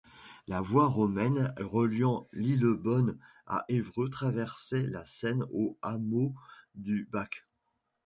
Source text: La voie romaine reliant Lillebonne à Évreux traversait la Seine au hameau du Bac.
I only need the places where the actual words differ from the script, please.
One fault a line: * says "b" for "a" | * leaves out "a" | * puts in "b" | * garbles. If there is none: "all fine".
all fine